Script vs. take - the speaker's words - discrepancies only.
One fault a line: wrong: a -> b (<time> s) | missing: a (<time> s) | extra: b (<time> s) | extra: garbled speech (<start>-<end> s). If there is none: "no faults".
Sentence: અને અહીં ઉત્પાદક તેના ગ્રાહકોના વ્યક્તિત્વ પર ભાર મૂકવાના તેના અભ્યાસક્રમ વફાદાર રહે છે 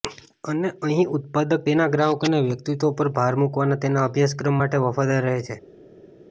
extra: માટે (4.6 s)